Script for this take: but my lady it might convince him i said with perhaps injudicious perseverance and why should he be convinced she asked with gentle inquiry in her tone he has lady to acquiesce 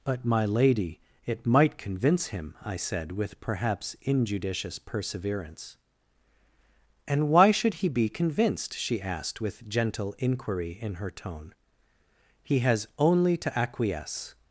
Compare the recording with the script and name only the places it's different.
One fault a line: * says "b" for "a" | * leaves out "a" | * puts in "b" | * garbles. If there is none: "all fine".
* says "only" for "lady"